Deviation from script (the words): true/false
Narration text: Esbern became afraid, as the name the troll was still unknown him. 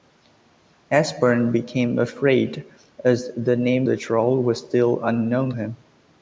false